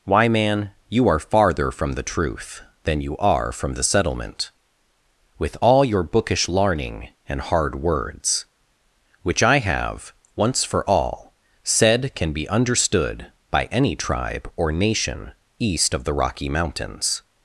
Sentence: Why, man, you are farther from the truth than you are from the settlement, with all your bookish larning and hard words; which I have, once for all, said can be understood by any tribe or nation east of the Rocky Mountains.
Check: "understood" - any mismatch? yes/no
no